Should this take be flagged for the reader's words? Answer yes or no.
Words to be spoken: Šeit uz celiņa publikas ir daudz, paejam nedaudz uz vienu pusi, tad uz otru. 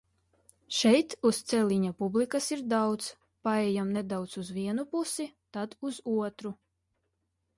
no